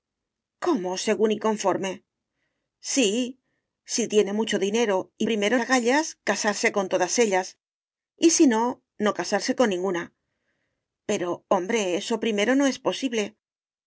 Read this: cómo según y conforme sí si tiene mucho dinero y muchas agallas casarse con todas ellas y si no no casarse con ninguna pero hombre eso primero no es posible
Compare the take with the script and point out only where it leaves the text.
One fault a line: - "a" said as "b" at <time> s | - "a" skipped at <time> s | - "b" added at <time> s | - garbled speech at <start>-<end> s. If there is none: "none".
- "muchas" said as "primero" at 5.2 s